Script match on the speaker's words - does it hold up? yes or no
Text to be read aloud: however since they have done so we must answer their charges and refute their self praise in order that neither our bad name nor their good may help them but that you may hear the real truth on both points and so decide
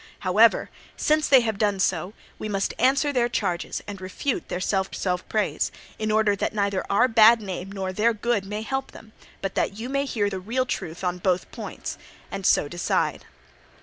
no